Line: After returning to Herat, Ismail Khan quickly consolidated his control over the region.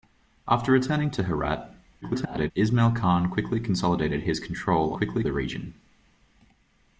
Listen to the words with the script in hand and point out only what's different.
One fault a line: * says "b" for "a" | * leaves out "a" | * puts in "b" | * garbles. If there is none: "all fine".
* garbles
* says "quickly" for "over"